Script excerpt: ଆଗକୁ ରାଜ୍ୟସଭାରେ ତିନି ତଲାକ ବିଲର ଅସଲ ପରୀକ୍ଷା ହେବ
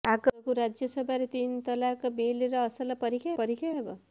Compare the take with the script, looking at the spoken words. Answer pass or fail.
fail